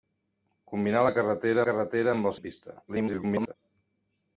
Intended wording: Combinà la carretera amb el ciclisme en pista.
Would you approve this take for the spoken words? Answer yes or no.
no